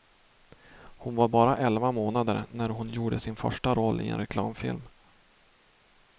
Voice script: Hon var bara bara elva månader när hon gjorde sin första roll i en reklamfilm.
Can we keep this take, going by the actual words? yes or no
no